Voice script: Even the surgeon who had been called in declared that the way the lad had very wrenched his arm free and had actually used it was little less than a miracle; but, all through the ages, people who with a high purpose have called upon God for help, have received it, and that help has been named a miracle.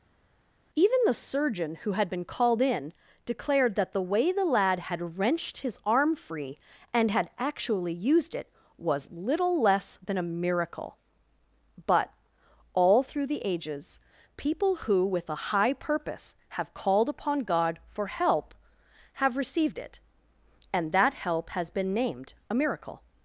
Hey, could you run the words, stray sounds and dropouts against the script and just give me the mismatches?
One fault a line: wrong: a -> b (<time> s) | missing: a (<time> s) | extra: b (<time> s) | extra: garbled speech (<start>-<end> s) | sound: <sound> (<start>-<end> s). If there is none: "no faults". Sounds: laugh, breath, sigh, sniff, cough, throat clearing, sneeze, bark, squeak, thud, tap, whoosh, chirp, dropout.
missing: very (5.2 s)